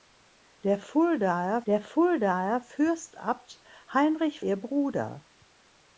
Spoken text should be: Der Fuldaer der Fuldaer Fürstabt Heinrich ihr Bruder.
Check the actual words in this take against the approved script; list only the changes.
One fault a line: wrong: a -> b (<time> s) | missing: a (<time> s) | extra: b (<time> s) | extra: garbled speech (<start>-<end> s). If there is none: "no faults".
no faults